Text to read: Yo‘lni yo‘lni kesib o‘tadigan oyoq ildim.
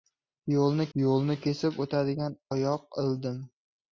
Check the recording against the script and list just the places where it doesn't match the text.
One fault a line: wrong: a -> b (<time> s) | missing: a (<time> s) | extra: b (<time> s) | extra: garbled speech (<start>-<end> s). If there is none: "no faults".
no faults